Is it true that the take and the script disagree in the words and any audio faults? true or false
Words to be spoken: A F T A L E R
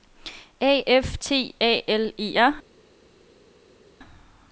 false